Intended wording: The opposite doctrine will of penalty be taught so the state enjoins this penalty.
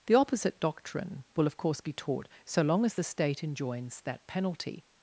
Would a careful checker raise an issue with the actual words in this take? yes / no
yes